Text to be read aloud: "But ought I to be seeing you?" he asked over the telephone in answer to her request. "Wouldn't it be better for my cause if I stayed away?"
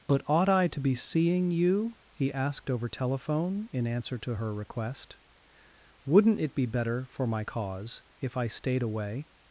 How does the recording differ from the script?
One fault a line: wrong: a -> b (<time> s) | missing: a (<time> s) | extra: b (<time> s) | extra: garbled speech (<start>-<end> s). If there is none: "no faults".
missing: the (2.9 s)